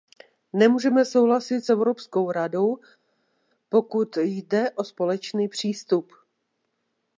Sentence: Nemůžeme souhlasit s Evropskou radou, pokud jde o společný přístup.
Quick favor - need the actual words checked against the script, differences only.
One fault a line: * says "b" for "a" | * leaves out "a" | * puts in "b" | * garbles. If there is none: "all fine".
all fine